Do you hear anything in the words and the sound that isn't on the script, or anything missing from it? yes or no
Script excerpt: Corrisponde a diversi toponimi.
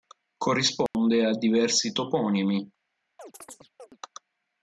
yes